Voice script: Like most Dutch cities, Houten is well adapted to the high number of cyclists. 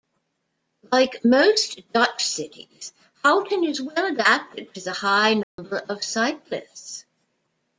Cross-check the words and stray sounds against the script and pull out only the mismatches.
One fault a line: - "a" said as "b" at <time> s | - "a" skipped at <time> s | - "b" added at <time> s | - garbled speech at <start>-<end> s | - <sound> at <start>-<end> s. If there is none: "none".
- dropout at 5.4-5.6 s